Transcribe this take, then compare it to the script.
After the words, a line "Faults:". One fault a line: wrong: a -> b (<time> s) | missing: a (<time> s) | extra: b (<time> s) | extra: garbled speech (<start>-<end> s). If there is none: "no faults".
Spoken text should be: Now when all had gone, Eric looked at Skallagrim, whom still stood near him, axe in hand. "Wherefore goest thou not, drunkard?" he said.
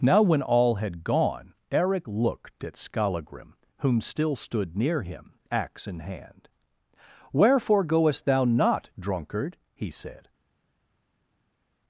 Now when all had gone, Eric looked at Skallagrim, whom still stood near him, axe in hand. "Wherefore goest thou not, drunkard?" he said.
Faults:
no faults